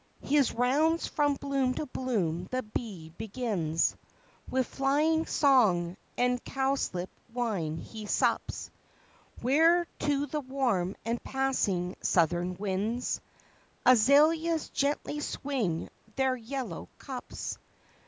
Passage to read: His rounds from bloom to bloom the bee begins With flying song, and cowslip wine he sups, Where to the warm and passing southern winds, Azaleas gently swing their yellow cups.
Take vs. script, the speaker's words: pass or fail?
pass